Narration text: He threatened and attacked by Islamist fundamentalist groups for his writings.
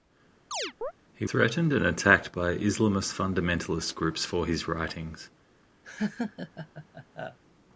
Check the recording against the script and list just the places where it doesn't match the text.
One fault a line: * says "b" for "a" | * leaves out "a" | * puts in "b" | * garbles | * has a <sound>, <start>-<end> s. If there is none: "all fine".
* has a chirp, 0.5-0.9 s
* has a laugh, 5.8-7.4 s